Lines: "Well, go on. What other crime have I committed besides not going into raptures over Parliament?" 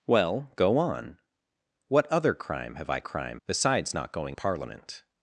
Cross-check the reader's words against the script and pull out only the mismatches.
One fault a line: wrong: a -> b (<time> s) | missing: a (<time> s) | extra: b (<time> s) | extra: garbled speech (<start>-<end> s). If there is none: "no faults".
wrong: committed -> crime (3.0 s)
missing: into raptures over (4.4 s)